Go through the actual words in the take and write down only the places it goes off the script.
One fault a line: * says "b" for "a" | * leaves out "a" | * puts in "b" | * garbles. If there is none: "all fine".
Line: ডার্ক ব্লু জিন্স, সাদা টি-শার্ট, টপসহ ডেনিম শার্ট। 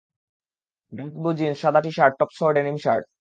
all fine